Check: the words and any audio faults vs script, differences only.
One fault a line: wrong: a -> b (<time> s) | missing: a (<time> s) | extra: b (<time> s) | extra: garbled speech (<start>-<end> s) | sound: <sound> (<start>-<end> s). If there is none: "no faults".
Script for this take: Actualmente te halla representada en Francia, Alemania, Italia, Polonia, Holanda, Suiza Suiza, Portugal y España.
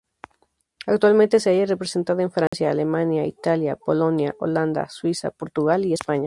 wrong: te -> se (1.4 s)
sound: dropout (2.5-2.5 s)
missing: Suiza (5.3 s)